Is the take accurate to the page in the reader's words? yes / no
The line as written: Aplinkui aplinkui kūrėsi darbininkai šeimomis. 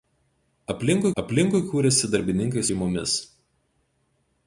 yes